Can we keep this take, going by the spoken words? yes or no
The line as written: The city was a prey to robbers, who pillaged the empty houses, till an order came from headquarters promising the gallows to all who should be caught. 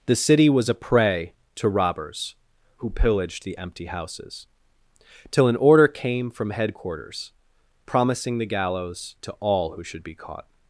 yes